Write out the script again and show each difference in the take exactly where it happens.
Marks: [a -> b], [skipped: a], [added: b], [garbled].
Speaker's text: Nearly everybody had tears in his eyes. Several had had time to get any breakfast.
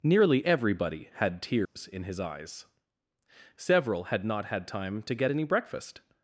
Nearly everybody had tears in his eyes. Several had [added: not] had time to get any breakfast.